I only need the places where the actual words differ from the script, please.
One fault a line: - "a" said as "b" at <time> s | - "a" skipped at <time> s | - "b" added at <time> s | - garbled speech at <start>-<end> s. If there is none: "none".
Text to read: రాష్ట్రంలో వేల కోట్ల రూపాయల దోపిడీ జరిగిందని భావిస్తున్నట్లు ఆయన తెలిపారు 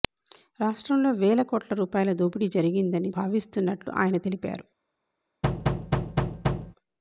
none